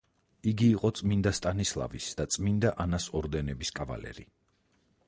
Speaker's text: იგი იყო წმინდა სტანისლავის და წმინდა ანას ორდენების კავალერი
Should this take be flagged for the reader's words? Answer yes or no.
no